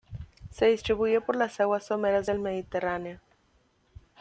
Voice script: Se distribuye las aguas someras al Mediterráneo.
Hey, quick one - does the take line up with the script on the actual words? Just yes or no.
no